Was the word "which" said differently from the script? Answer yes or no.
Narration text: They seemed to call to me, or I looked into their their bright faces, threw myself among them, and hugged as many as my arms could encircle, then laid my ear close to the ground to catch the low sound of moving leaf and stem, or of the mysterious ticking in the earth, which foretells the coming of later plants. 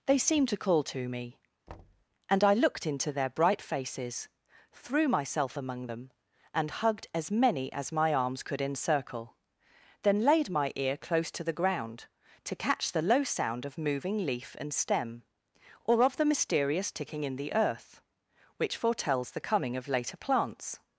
no